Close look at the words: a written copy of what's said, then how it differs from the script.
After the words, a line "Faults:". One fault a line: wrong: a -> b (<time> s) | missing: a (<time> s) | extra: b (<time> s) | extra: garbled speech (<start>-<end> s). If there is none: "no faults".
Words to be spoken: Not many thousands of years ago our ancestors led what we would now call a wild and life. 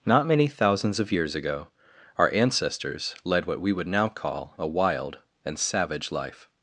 Not many thousands of years ago our ancestors led what we would now call a wild and savage life.
Faults:
extra: savage (5.6 s)